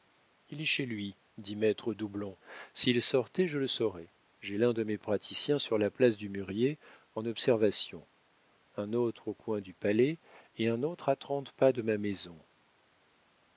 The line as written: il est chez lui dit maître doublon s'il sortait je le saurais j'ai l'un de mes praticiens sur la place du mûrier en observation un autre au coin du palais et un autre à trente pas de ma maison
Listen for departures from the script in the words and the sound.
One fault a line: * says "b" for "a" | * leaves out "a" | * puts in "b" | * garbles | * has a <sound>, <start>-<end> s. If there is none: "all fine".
all fine